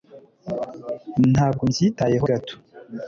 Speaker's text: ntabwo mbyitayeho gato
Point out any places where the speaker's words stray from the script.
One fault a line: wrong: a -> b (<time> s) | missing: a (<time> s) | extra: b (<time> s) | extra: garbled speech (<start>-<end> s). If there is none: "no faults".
no faults